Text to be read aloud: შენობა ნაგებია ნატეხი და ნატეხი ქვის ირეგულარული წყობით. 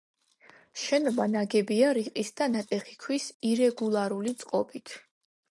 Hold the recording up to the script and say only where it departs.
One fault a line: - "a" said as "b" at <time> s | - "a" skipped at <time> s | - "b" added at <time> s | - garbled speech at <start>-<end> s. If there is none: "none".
- "ნატეხი" said as "რიყის" at 2.0 s